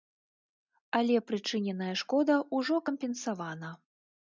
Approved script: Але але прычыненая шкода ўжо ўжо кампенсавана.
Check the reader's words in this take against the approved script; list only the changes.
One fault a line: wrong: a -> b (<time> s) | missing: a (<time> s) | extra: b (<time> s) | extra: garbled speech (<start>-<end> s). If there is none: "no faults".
missing: але (1.2 s)
missing: ўжо (2.9 s)